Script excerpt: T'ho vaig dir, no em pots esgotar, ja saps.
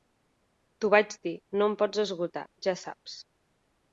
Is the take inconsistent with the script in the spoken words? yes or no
no